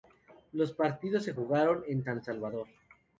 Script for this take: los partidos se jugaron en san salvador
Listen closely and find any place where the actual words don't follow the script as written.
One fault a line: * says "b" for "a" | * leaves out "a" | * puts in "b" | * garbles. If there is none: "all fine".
all fine